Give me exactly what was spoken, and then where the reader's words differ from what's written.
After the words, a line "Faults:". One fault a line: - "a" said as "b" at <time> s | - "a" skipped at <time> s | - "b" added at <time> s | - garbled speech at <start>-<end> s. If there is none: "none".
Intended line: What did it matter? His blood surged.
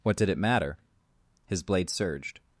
What did it matter? His blade surged.
Faults:
- "blood" said as "blade" at 1.6 s